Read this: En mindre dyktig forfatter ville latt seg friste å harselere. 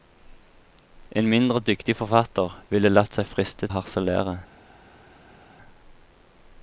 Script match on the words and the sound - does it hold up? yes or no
yes